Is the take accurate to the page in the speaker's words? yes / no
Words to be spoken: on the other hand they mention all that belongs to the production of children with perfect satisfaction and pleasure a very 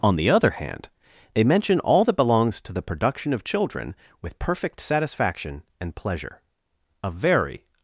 yes